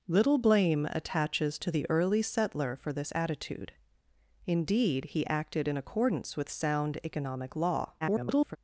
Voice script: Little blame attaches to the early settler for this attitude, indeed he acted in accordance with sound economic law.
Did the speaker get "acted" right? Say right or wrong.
right